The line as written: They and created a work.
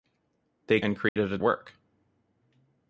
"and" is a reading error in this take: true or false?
false